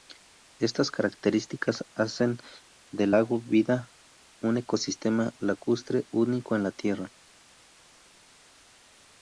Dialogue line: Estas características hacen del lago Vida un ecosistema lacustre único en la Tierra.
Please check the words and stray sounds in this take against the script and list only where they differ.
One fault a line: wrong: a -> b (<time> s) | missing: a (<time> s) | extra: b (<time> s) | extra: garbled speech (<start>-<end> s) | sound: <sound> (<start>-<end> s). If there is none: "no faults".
no faults